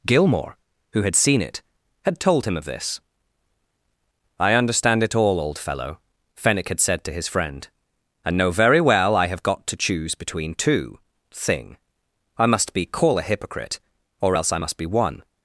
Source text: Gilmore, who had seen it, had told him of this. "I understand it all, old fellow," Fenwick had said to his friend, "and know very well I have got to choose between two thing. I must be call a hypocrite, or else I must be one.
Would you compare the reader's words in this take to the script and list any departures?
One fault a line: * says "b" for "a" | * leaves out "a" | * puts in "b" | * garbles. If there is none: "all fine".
all fine